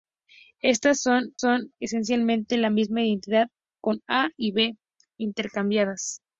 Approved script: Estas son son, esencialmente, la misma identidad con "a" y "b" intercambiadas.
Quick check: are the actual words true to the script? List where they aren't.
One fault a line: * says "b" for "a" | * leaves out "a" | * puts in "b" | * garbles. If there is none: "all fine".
all fine